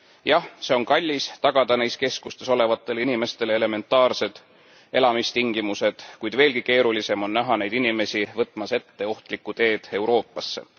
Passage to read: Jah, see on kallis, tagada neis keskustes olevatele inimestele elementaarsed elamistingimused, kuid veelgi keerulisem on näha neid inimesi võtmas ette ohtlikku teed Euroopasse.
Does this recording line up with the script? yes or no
yes